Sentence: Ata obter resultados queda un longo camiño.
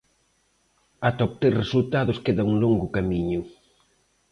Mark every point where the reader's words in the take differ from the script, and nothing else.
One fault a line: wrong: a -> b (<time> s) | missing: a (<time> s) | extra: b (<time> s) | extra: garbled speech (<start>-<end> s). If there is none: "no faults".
no faults